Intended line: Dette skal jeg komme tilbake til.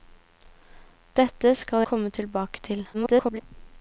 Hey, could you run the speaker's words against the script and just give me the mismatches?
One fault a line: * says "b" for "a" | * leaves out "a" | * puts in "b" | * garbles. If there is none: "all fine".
* leaves out "jeg"
* garbles